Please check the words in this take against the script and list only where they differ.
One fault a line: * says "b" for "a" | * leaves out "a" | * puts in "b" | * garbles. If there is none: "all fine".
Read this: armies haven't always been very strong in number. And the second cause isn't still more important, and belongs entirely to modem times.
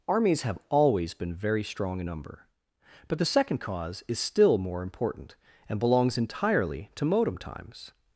* says "have" for "haven't"
* says "But" for "And"
* says "is" for "isn't"